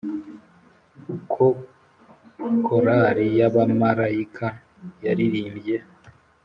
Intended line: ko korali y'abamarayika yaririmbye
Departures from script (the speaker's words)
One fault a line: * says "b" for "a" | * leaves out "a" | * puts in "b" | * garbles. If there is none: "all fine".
all fine